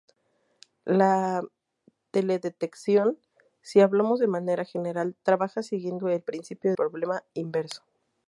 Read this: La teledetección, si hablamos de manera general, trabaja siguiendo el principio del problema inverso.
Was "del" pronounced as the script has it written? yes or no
no